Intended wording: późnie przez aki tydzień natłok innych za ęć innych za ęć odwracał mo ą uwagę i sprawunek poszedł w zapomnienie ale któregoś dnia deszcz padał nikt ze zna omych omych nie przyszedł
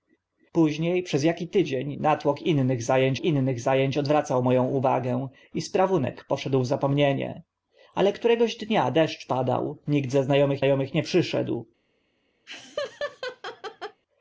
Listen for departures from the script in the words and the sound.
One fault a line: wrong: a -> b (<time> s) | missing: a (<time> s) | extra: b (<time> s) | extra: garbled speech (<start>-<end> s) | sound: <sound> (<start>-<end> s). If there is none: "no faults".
sound: laugh (12.5-14.0 s)